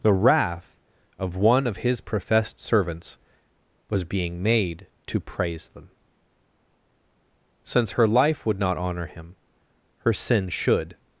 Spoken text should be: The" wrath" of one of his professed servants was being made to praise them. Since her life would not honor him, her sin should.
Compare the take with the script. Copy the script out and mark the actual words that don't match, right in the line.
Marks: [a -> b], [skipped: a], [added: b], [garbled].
The" wrath" of one of his professed servants was being made to praise them. Since her life would not honor him, her sin should.